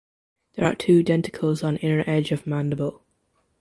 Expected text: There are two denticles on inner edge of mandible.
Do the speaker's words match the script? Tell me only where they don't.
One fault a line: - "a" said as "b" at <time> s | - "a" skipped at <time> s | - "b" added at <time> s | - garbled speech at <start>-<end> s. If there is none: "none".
none